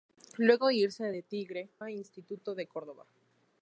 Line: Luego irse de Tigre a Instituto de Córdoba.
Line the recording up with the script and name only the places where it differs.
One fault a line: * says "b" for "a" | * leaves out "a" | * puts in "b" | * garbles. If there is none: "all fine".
all fine